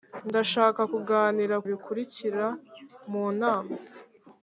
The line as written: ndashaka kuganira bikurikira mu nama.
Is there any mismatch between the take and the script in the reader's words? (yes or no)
no